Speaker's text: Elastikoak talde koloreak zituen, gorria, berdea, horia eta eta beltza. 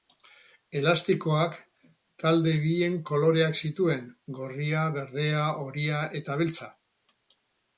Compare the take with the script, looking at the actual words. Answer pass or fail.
fail